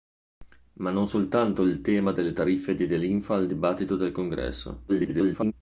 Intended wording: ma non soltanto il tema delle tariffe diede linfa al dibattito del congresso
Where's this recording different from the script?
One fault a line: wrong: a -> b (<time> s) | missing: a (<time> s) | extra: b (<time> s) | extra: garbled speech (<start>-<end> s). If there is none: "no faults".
extra: garbled speech (4.9-5.5 s)